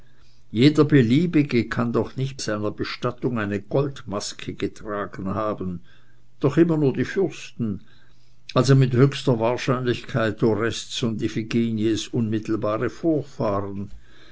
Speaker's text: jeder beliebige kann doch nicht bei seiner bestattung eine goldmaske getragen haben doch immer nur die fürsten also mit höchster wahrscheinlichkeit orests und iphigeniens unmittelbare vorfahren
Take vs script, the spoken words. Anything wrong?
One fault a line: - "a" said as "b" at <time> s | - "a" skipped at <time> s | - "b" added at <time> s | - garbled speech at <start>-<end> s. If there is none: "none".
- "bei" skipped at 2.4 s